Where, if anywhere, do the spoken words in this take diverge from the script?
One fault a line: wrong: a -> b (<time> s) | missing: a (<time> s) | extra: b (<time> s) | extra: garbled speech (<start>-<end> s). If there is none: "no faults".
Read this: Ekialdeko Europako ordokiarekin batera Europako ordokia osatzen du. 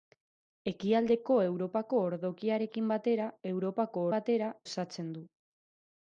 wrong: ordokia -> batera (4.1 s)